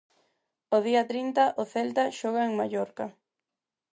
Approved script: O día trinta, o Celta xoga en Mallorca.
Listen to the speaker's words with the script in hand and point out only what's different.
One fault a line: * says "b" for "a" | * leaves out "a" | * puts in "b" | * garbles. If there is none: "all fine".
all fine